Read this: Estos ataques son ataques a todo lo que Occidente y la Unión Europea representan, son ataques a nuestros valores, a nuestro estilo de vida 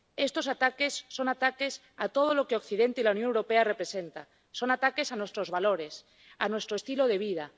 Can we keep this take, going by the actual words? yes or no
yes